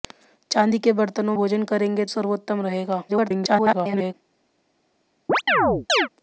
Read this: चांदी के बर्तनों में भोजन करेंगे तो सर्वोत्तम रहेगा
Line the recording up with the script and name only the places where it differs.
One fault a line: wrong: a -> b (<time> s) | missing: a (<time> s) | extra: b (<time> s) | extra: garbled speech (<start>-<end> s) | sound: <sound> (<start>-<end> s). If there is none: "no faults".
missing: में (1.4 s)
missing: तो (2.0 s)
extra: garbled speech (3.1-4.1 s)
sound: chirp (5.3-6.1 s)